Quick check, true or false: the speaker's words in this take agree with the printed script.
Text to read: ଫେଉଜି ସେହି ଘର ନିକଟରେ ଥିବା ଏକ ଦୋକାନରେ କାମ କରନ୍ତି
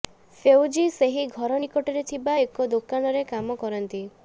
true